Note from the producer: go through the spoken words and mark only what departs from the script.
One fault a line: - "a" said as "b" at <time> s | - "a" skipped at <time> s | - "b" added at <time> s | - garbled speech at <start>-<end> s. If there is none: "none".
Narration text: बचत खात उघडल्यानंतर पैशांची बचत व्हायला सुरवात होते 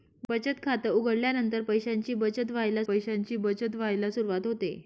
- "पैशांची बचत व्हायला" added at 2.8 s